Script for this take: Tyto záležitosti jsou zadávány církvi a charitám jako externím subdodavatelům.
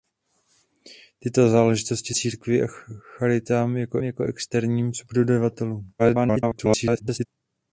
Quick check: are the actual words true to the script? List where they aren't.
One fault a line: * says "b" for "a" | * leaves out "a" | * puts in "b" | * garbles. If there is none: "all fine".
* leaves out "jsou zadávány"
* puts in "jako"
* garbles